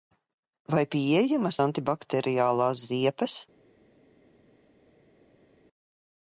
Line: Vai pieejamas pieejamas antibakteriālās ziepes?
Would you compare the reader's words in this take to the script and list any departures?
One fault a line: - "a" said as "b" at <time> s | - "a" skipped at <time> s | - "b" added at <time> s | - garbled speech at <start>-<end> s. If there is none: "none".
- "pieejamas" skipped at 1.6 s